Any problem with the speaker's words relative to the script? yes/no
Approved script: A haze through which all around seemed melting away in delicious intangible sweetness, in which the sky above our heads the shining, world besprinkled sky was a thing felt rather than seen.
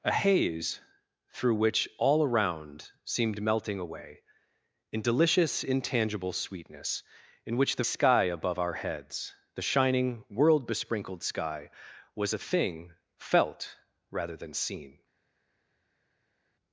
no